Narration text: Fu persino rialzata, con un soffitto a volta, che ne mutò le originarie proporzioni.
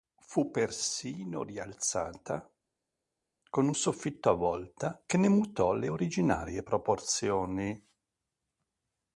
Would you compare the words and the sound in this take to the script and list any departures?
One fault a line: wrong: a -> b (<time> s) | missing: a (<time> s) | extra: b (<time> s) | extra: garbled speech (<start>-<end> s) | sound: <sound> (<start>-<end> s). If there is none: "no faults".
no faults